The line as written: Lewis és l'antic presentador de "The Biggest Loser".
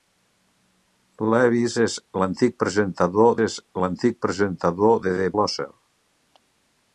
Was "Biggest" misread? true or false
true